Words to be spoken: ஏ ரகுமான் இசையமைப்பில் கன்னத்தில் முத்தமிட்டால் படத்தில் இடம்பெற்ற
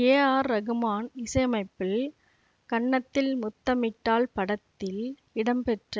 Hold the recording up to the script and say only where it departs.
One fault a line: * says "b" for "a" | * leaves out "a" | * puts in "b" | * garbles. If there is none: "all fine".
* puts in "ஆர்"